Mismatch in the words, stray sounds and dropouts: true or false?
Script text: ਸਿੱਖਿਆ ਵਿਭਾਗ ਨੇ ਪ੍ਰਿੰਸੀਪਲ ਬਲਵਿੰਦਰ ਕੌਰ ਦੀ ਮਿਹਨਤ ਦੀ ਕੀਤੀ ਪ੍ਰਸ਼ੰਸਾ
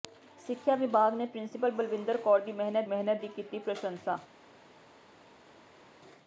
true